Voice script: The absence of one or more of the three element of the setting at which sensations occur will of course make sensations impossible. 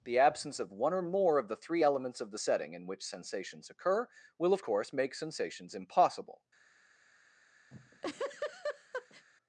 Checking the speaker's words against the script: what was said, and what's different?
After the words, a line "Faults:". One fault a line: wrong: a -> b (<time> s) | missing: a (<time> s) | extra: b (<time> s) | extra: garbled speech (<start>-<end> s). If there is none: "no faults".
The absence of one or more of the three elements of the setting in which sensations occur will of course make sensations impossible.
Faults:
wrong: element -> elements (1.8 s)
wrong: at -> in (2.7 s)